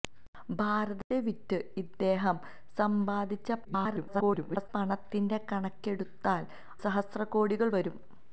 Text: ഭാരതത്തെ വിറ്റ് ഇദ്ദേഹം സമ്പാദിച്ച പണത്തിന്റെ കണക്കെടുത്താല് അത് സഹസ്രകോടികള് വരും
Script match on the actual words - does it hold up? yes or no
no